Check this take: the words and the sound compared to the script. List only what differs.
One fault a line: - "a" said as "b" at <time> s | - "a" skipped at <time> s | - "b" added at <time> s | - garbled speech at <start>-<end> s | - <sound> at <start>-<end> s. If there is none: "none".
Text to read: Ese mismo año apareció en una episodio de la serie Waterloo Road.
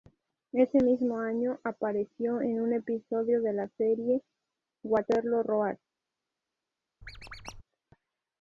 - "una" said as "un" at 2.6 s
- squeak at 7.0-7.6 s